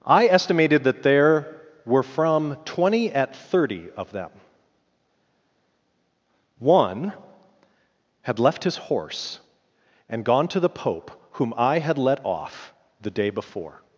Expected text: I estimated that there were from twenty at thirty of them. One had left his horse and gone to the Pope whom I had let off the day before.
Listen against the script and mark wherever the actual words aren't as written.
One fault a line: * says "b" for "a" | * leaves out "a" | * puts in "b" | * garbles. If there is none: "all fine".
all fine